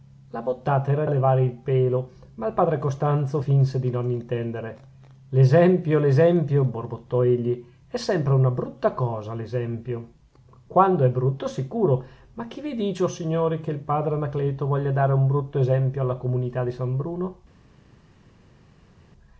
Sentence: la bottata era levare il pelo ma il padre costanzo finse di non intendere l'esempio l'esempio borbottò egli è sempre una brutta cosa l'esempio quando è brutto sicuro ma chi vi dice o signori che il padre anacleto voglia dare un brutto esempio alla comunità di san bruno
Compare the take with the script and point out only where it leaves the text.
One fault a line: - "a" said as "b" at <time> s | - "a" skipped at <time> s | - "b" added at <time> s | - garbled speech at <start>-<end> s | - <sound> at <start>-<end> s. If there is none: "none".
none